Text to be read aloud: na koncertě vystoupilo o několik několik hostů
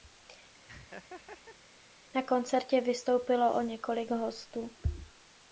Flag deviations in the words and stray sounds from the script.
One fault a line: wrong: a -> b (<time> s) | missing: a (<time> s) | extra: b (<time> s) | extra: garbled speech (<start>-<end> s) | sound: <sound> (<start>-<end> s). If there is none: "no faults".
sound: laugh (0.7-1.6 s)
missing: několik (4.1 s)